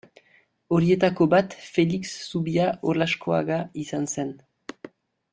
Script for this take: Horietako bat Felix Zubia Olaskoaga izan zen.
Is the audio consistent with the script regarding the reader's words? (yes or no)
yes